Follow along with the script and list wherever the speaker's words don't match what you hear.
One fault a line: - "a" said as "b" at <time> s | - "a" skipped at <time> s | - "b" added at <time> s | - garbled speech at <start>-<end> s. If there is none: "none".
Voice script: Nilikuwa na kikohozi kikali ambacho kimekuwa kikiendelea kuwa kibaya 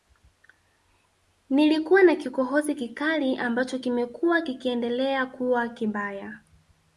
none